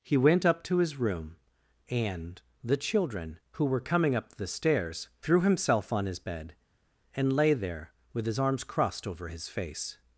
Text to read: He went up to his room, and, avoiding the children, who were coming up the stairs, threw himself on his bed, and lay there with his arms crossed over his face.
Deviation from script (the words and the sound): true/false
true